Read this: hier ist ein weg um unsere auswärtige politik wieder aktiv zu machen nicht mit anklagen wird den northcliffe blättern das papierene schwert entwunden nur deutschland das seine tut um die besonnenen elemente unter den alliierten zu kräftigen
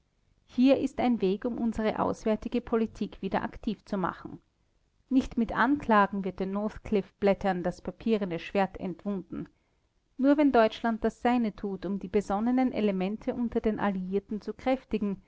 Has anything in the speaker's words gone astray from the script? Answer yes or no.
yes